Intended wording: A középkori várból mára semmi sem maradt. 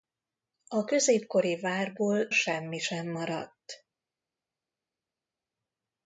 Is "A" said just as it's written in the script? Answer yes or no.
yes